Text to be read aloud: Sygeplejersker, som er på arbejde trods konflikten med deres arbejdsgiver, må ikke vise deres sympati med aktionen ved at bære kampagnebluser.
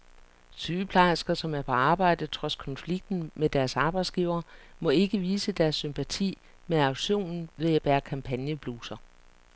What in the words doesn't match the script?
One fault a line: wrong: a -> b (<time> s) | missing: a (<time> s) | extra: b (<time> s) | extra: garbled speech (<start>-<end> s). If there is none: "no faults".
no faults